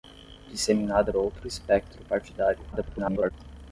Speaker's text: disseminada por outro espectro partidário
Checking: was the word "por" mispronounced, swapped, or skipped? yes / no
yes